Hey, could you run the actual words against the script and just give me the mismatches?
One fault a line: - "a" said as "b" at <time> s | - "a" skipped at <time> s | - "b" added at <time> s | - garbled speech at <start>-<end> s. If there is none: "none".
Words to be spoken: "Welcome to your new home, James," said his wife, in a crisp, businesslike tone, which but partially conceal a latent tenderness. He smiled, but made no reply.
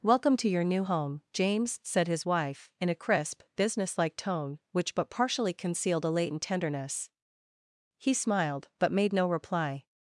- "conceal" said as "concealed" at 5.5 s